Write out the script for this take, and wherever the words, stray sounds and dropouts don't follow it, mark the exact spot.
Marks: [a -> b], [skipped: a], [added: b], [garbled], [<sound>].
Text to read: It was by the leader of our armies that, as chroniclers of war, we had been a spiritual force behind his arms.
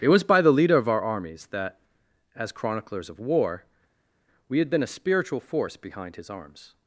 It was by the leader of our armies that, as chroniclers of war, we had been a spiritual force behind his arms.